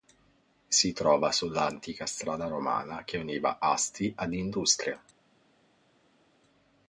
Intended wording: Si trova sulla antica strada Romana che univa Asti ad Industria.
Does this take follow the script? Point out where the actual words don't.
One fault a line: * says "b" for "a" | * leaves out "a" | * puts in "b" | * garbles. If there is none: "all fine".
all fine